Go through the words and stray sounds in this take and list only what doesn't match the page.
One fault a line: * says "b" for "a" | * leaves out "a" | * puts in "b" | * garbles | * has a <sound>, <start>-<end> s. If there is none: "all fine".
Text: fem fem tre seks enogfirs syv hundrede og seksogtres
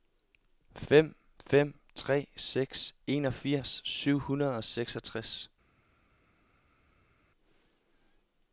all fine